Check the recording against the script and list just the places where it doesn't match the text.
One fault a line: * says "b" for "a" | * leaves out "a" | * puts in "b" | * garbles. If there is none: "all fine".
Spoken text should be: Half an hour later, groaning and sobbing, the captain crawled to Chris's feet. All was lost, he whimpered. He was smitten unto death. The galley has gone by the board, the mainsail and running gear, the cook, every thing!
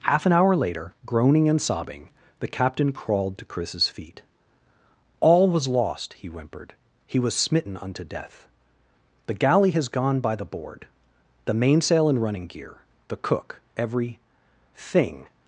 all fine